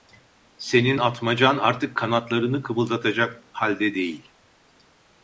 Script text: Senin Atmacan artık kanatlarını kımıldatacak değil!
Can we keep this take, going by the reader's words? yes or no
no